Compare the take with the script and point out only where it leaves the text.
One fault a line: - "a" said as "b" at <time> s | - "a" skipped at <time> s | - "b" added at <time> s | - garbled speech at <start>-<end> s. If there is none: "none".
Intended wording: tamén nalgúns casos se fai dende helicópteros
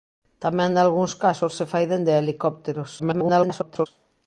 - garbled speech at 3.0-3.9 s